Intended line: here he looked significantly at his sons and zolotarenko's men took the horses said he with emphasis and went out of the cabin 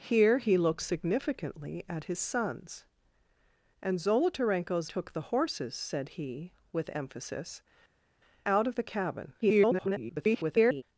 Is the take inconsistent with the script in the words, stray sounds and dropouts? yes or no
yes